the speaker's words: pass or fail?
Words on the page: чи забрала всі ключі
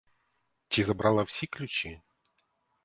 pass